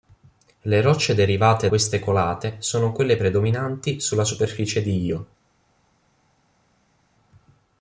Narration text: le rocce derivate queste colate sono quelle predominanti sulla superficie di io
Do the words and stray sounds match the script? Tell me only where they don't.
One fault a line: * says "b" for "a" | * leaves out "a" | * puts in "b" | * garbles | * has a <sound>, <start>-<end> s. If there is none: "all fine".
all fine